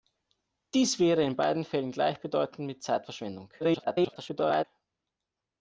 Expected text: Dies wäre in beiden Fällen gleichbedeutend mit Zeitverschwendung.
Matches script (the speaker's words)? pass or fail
fail